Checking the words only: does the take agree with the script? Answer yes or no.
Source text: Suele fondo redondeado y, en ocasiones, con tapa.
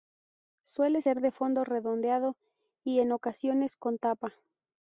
no